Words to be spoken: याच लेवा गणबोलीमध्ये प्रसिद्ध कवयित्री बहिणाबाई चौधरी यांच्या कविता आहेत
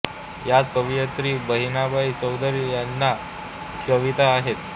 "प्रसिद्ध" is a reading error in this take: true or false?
true